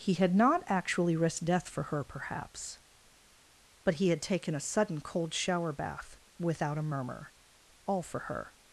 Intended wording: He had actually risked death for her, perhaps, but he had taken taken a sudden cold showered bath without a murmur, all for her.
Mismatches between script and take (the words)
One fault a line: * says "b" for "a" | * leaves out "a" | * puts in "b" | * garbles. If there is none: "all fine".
* puts in "not"
* leaves out "taken"
* says "shower" for "showered"